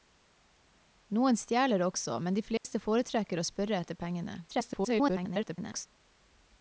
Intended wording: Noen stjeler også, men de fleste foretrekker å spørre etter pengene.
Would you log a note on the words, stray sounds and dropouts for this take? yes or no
yes